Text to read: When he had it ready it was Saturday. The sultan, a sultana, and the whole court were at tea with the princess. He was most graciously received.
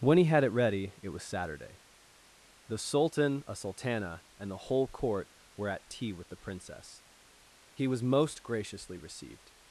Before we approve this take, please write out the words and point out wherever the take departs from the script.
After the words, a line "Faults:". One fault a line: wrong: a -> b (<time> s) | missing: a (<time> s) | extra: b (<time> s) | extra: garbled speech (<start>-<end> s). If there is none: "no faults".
When he had it ready it was Saturday. The sultan, a sultana, and the whole court were at tea with the princess. He was most graciously received.
Faults:
no faults